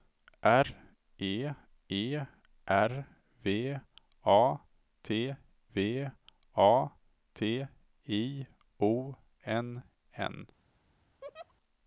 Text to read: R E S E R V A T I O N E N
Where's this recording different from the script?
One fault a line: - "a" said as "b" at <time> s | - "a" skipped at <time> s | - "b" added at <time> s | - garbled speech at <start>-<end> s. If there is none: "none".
- "S" skipped at 1.5 s
- "V A T" added at 5.7 s
- "E" skipped at 9.8 s